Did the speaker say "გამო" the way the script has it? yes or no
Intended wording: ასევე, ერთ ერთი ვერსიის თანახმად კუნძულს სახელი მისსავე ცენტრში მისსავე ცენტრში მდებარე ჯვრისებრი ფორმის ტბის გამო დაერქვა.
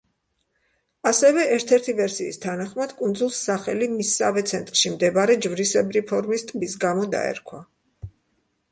yes